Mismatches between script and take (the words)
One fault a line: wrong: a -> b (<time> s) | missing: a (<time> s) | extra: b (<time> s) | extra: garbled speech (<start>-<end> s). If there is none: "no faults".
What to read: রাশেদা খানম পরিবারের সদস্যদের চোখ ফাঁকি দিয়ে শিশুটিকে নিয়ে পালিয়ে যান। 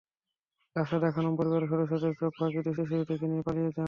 extra: দিয়ে (2.8 s)